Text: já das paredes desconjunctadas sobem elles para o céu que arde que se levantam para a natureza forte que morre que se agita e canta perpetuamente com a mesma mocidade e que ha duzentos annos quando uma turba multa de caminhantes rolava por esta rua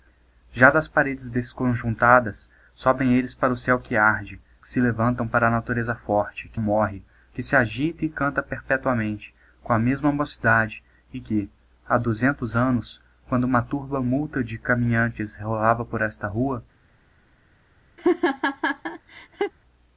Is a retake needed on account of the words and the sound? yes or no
yes